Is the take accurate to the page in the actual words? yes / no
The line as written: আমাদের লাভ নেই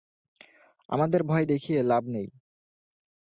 no